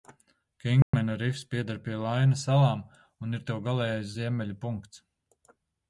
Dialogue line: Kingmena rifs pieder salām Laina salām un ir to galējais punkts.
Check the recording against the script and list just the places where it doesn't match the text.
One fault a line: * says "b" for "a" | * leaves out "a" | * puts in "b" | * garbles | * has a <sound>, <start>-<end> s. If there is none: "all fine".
* has a dropout, 0.8-0.9 s
* says "pie" for "salām"
* puts in "ziemeļu"